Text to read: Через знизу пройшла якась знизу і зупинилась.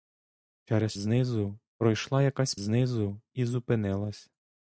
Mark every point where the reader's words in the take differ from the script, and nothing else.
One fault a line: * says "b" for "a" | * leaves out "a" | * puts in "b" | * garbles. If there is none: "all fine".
all fine